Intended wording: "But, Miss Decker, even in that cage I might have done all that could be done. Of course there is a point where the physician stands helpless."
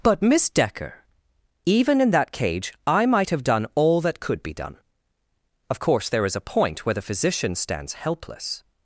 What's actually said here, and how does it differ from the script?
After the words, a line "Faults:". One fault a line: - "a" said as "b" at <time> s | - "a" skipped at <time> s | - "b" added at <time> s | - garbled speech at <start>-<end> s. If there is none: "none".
"But, Miss Decker, even in that cage I might have done all that could be done. Of course there is a point where the physician stands helpless."
Faults:
none